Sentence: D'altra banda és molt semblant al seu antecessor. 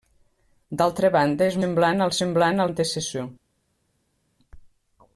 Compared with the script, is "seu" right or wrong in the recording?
wrong